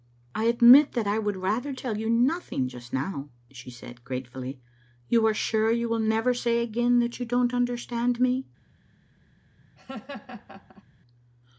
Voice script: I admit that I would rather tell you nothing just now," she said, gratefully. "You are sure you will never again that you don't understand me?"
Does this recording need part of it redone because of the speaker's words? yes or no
yes